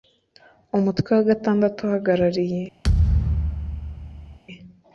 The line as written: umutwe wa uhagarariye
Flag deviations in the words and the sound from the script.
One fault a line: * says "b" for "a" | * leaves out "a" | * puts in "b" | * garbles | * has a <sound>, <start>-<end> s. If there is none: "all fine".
* puts in "gatandatu"
* has a thud, 2.8-4.4 s